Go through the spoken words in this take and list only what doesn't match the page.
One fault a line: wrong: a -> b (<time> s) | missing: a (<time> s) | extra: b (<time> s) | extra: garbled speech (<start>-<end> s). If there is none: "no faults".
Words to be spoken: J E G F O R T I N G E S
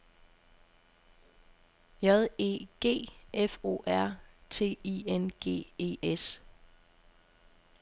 no faults